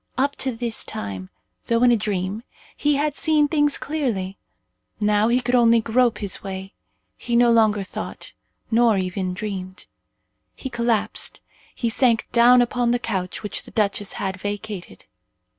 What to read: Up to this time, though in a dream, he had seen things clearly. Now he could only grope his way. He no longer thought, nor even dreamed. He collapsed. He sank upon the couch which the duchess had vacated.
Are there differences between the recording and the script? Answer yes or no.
yes